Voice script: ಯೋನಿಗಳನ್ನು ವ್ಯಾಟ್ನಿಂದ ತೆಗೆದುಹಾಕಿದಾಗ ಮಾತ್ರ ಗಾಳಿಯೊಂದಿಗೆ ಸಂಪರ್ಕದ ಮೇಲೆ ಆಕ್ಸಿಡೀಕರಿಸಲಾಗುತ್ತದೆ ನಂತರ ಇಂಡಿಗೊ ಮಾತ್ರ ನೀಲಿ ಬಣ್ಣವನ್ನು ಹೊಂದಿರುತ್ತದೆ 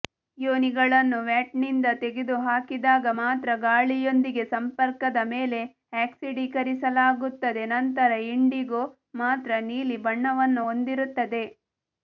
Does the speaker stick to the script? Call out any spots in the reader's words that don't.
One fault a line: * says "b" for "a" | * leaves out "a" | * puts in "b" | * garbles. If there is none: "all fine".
all fine